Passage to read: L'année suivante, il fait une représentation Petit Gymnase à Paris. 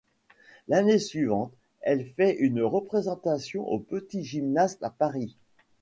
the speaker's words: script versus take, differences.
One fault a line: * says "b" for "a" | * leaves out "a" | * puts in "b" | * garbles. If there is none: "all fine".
* says "elle" for "il"
* puts in "au"